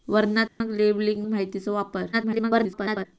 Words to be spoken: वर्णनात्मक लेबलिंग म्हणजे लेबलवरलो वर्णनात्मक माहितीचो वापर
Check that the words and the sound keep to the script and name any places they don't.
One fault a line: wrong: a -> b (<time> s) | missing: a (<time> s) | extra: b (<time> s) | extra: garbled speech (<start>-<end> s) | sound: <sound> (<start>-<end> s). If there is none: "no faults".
sound: dropout (0.5-0.6 s)
missing: म्हणजे लेबलवरलो वर्णनात्मक (1.3 s)
extra: garbled speech (2.1-3.1 s)